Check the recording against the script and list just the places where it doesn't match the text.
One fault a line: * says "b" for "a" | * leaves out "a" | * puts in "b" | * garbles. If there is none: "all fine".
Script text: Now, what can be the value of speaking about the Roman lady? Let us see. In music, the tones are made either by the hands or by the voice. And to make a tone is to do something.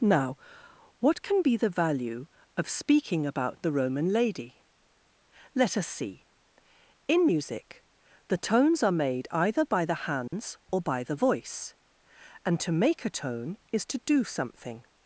all fine